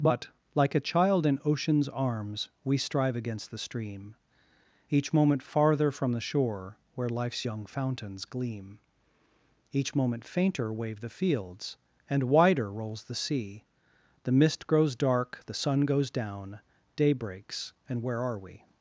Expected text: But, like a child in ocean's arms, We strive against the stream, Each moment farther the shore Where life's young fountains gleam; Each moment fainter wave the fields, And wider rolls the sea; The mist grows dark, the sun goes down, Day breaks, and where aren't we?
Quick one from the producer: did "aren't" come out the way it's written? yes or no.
no